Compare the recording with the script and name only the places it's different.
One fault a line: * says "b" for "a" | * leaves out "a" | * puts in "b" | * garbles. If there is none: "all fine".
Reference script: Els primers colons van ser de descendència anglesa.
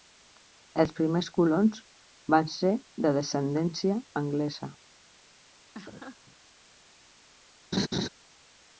all fine